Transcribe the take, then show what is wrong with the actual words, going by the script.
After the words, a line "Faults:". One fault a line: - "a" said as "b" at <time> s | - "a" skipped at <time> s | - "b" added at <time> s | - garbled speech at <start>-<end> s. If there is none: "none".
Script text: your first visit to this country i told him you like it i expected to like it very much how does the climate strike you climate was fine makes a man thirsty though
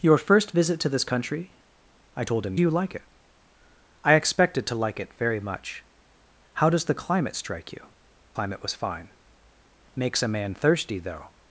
your first visit to this country i told him you like it i expected to like it very much how does the climate strike you climate was fine makes a man thirsty though
Faults:
none